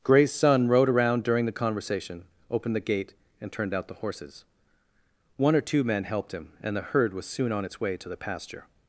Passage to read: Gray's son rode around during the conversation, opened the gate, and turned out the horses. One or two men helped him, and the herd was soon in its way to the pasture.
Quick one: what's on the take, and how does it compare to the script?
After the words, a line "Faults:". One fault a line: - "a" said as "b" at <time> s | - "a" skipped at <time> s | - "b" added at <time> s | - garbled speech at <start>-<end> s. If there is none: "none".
Gray's son rode around during the conversation, opened the gate, and turned out the horses. One or two men helped him, and the herd was soon on its way to the pasture.
Faults:
- "in" said as "on" at 7.5 s